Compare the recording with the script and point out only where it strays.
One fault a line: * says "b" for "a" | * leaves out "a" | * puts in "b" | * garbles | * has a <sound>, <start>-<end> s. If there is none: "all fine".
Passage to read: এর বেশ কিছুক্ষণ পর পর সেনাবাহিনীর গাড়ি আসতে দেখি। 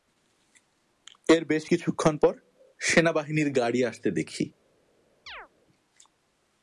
* leaves out "পর"
* has a chirp, 5.3-5.5 s